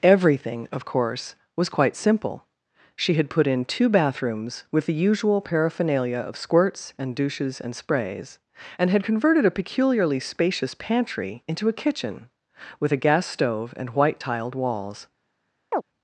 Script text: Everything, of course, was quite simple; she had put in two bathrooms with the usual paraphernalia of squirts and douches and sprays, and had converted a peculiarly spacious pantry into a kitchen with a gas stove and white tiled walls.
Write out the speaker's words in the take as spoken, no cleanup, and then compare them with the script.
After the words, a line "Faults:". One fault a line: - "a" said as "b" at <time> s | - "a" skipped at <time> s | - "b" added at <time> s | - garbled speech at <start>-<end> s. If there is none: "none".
Everything, of course, was quite simple; she had put in two bathrooms with the usual paraphernalia of squirts and douches and sprays, and had converted a peculiarly spacious pantry into a kitchen with a gas stove and white tiled walls.
Faults:
none